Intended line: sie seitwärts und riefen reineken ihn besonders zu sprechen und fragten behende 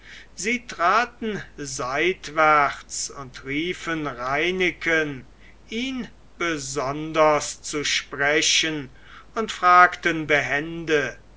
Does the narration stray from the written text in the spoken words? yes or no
yes